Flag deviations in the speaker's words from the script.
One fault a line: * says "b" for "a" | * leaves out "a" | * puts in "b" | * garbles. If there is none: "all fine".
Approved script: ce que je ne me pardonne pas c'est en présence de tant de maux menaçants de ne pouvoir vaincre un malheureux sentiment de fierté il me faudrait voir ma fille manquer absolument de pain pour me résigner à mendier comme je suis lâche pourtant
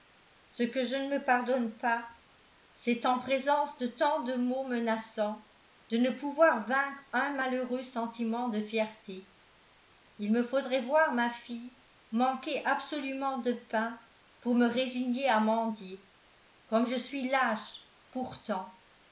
all fine